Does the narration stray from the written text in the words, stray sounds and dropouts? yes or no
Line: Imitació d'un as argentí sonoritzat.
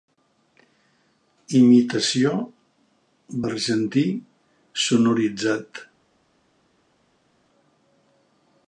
yes